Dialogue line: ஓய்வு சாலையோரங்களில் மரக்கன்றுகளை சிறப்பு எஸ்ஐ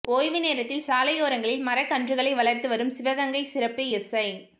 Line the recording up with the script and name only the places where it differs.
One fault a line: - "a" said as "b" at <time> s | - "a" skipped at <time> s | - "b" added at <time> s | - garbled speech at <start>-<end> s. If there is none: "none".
- "நேரத்தில்" added at 0.4 s
- "வளர்த்து வரும் சிவகங்கை" added at 2.3 s